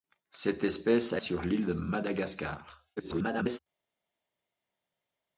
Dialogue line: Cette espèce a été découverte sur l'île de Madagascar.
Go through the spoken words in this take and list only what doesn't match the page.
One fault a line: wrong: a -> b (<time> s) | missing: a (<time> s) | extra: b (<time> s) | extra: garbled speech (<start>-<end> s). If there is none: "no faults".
missing: été découverte (1.2 s)
extra: garbled speech (3.0-3.6 s)